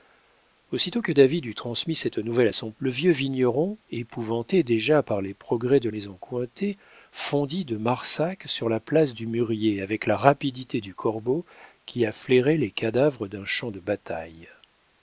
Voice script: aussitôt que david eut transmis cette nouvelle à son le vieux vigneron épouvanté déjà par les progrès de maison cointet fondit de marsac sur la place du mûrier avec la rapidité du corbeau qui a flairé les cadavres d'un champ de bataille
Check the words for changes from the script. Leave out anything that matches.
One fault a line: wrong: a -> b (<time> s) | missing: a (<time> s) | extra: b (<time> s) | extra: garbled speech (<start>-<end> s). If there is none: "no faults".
no faults